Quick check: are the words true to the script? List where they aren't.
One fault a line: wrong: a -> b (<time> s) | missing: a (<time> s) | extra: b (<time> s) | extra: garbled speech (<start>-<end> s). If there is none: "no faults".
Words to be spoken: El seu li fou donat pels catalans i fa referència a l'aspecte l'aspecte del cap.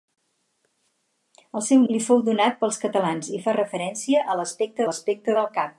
no faults